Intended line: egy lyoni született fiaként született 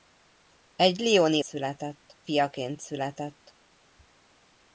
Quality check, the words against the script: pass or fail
pass